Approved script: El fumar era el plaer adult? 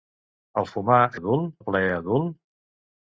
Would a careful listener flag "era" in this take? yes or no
yes